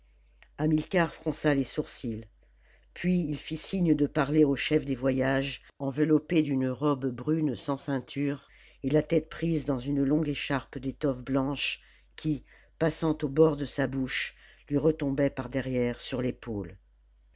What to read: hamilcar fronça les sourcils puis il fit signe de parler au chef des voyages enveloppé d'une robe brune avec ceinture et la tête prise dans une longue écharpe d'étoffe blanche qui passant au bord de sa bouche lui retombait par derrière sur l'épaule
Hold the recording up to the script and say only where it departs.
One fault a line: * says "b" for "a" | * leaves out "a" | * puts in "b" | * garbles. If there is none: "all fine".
* says "sans" for "avec"